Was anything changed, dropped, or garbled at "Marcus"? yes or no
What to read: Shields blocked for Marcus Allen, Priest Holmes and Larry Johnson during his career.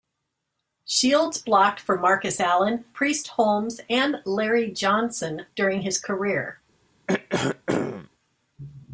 no